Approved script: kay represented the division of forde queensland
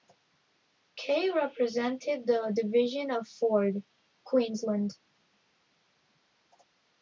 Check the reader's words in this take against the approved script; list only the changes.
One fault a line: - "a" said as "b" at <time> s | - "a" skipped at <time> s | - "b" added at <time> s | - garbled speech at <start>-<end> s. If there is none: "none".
none